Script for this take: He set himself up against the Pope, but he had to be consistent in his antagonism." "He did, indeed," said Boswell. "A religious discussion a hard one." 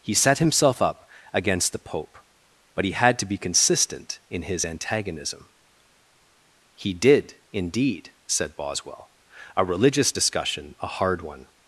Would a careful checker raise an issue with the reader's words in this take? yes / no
no